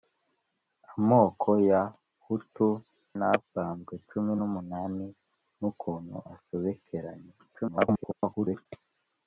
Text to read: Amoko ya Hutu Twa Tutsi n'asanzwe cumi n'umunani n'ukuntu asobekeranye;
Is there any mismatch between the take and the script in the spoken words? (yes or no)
yes